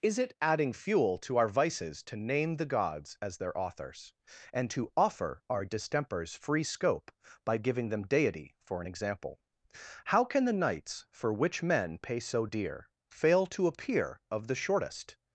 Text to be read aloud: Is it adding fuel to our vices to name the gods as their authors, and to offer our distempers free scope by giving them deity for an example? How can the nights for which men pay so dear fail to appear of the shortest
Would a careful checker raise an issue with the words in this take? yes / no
no